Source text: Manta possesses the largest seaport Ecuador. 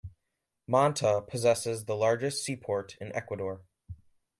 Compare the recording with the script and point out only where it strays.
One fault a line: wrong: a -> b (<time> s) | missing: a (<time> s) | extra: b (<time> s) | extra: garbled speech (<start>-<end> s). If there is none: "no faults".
extra: in (3.0 s)